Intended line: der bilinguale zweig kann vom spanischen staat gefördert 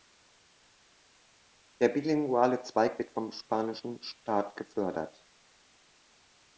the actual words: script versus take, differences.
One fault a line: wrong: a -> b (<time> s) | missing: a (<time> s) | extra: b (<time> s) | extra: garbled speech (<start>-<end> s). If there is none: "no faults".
wrong: kann -> wird (3.0 s)